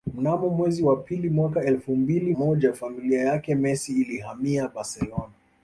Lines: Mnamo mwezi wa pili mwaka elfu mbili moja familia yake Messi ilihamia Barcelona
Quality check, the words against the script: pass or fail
pass